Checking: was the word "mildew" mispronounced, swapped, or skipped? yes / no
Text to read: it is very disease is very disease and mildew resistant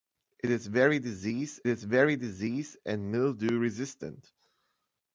no